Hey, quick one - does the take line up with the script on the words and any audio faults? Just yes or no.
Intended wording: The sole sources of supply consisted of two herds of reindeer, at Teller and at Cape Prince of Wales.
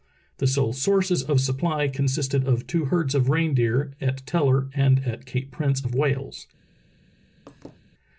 no